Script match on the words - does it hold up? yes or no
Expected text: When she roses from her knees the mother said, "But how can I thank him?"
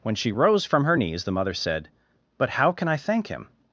no